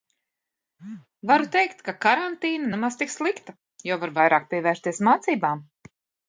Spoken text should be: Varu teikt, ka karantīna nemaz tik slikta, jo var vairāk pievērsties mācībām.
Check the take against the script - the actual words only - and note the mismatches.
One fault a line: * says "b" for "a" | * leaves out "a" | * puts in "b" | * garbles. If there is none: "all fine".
all fine